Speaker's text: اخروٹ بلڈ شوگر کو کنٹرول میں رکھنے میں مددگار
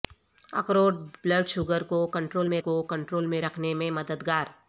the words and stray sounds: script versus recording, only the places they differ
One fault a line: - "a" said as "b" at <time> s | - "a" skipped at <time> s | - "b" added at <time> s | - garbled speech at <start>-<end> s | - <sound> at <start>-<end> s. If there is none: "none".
- "کو کنٹرول میں" added at 2.6 s